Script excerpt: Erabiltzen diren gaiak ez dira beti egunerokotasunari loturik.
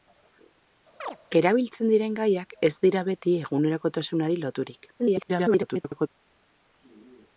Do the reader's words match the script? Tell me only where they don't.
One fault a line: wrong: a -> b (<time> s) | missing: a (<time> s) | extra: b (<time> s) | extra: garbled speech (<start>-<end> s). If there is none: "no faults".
extra: garbled speech (5.0-6.1 s)